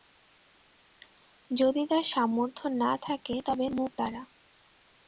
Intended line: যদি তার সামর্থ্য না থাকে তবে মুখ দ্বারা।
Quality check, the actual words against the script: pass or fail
pass